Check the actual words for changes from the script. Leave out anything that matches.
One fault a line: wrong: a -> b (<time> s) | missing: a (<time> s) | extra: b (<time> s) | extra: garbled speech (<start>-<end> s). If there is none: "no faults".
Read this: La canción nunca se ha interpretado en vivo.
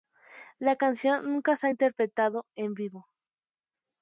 no faults